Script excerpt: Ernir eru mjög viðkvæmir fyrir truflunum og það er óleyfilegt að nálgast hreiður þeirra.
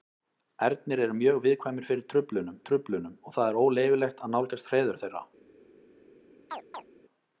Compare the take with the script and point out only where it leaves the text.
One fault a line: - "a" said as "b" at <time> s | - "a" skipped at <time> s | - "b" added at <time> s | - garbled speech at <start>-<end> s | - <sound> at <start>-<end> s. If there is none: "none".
- "truflunum" added at 2.7 s
- chirp at 6.5-6.9 s